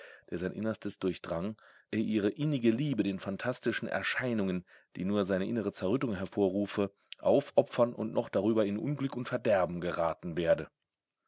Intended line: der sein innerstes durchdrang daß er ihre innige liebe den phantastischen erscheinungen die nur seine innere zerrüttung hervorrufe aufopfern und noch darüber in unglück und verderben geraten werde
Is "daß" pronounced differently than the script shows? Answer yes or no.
yes